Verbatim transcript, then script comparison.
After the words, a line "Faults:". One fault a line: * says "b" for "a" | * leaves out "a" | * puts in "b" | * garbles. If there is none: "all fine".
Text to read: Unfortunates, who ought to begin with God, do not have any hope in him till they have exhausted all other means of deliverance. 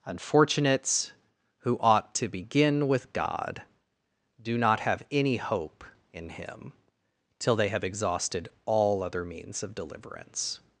Unfortunates, who ought to begin with God, do not have any hope in him till they have exhausted all other means of deliverance.
Faults:
all fine